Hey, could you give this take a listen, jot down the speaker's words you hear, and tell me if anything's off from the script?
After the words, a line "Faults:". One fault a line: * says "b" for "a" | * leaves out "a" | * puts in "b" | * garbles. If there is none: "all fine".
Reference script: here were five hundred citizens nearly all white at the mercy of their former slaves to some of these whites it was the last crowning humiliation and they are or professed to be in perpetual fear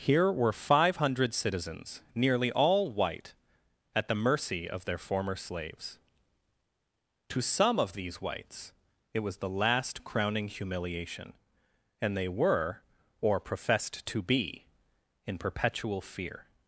here were five hundred citizens nearly all white at the mercy of their former slaves to some of these whites it was the last crowning humiliation and they were or professed to be in perpetual fear
Faults:
* says "were" for "are"